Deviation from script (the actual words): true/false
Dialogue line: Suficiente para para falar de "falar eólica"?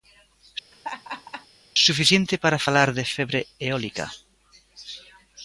true